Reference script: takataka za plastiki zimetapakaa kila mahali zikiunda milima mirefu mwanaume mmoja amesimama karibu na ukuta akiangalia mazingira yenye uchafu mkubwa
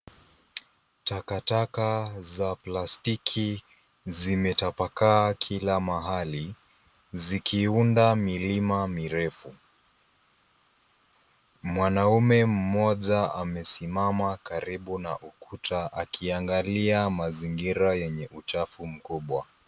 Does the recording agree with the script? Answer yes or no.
yes